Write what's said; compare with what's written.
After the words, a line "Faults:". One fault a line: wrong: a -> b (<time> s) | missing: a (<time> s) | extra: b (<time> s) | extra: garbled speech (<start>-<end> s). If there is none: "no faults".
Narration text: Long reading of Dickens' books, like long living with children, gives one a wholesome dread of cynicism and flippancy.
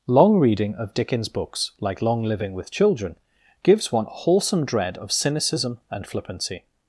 Long reading of Dickens' books, like long living with children, gives one a wholesome dread of cynicism and flippancy.
Faults:
no faults